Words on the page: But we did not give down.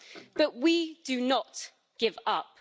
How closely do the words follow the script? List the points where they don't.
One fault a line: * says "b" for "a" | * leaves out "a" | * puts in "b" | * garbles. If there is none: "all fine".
* says "do" for "did"
* says "up" for "down"